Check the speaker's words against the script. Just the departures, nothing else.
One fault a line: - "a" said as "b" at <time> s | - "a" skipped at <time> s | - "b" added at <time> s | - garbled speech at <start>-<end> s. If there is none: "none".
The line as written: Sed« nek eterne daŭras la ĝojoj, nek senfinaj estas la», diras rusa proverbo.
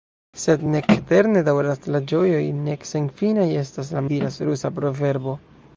none